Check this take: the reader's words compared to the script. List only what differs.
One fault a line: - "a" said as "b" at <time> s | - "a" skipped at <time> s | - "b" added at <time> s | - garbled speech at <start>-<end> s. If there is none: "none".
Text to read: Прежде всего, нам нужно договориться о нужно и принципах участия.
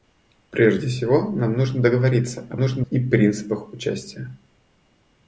none